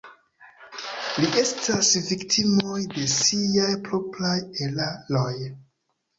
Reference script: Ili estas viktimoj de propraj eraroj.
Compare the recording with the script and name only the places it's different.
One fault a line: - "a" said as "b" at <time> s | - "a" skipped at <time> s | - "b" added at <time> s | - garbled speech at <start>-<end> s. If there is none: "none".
- "siaj" added at 3.1 s